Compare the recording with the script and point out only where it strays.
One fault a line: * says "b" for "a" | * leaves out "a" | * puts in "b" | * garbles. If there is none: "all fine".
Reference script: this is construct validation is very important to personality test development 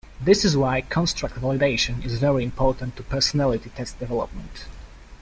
* puts in "why"